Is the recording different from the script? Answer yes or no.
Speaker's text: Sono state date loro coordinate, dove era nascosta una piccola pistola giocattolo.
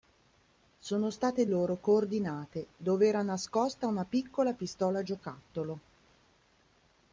yes